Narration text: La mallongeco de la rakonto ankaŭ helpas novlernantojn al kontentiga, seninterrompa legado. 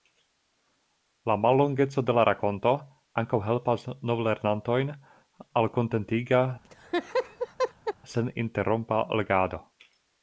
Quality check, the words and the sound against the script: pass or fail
fail